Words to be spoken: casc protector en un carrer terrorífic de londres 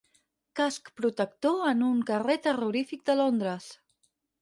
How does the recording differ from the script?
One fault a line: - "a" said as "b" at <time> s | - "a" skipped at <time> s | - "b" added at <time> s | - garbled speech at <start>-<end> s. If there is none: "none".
none